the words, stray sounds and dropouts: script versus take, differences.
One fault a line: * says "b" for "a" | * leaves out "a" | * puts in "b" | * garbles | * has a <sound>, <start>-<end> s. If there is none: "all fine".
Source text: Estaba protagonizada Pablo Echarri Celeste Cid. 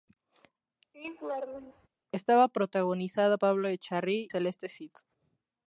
* has a laugh, 0.9-1.9 s